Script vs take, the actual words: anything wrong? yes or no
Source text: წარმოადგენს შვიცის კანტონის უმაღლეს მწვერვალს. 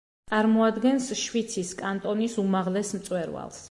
no